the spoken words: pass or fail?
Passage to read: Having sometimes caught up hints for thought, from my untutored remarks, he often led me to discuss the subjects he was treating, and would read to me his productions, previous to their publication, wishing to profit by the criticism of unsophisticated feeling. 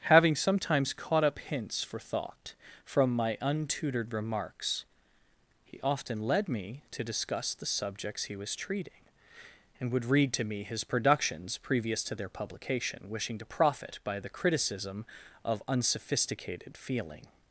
pass